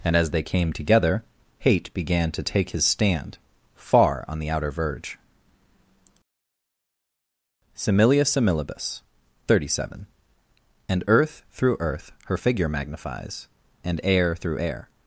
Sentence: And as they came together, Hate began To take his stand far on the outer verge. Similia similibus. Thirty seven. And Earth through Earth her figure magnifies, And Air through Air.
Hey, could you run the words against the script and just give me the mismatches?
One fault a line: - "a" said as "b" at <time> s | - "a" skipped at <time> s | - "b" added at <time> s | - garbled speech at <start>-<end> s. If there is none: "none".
none